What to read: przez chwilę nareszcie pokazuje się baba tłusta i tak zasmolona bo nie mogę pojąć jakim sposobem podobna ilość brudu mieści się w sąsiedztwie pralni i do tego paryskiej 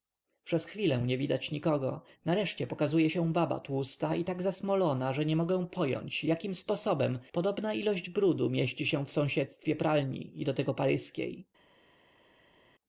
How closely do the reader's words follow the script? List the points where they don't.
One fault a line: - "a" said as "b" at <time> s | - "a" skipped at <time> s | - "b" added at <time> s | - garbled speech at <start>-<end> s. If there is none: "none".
- "nie widać nikogo" added at 1.0 s
- "bo" said as "że" at 5.1 s